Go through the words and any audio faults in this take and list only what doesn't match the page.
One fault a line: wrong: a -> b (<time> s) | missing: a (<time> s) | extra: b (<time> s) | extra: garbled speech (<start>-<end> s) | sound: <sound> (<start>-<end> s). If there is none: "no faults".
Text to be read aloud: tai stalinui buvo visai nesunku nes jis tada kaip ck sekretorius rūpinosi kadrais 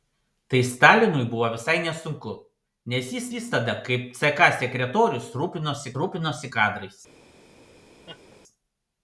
extra: jis (3.3 s)
extra: rūpinosi (6.0 s)
sound: laugh (8.1-8.4 s)